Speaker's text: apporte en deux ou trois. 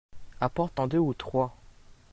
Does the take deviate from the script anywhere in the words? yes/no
no